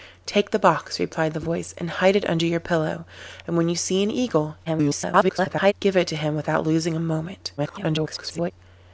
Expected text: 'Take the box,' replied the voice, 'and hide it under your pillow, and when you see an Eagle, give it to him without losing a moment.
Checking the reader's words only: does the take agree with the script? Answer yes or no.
no